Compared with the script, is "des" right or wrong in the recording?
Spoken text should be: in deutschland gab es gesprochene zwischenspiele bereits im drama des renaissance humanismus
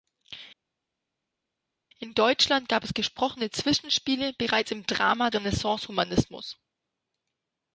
wrong